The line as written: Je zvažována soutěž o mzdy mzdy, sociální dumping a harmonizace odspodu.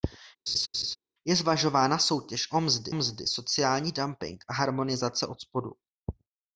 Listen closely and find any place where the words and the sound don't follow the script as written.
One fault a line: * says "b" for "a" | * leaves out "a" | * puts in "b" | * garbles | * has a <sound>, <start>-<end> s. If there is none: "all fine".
* has a laugh, 0.5-1.0 s